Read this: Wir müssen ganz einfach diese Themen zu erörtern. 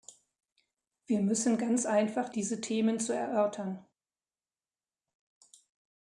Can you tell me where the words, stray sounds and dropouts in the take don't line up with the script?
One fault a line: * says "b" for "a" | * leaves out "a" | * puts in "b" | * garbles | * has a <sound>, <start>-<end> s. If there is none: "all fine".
all fine